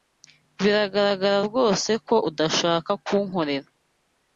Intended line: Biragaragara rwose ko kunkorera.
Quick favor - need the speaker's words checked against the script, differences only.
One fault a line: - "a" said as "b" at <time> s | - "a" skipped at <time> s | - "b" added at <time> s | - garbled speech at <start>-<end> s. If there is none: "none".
- "udashaka" added at 2.3 s